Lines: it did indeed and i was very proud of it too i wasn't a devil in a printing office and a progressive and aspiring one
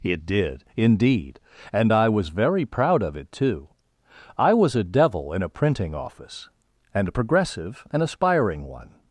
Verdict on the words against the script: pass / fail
fail